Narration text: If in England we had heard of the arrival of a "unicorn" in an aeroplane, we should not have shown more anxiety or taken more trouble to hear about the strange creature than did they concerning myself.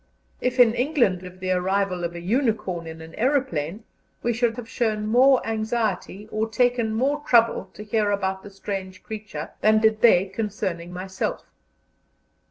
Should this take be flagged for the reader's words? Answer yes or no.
yes